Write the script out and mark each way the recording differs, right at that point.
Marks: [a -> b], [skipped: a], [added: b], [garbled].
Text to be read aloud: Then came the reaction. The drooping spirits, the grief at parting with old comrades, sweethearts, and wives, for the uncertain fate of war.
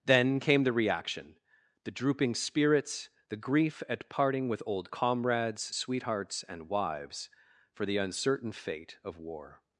Then came the reaction. The drooping spirits, the grief at parting with old comrades, sweethearts, and wives, for the uncertain fate of war.